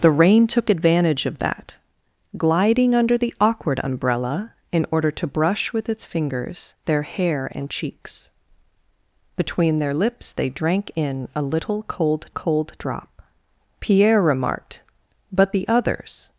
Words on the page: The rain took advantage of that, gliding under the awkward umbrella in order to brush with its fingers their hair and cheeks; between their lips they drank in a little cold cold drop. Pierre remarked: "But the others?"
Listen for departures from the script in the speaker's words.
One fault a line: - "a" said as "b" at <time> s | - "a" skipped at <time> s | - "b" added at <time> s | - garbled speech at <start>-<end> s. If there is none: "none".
none